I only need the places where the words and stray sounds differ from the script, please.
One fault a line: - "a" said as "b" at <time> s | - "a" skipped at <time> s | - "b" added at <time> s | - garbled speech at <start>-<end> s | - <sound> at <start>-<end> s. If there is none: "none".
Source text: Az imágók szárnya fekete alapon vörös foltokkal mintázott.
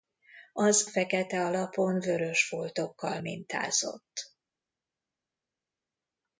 - "imágók szárnya" skipped at 0.8 s